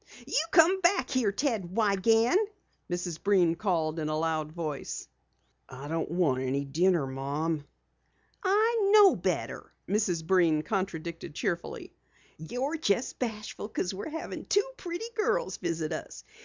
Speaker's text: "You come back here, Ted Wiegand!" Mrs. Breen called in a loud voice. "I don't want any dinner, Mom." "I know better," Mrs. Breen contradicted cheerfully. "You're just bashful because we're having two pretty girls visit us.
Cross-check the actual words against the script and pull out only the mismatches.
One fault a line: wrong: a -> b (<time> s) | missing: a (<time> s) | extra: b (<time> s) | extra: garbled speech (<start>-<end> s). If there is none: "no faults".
no faults